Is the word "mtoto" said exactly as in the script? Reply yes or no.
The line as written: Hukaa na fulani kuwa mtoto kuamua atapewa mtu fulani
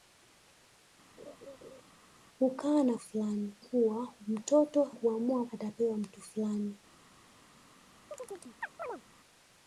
yes